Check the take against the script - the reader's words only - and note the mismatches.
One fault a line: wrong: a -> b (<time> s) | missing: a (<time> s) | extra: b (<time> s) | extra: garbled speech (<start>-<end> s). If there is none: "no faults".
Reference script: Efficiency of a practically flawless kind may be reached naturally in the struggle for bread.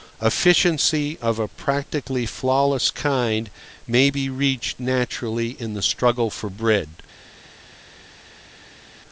no faults